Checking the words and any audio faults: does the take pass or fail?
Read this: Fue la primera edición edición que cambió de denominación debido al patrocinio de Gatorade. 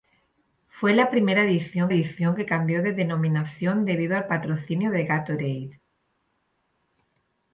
pass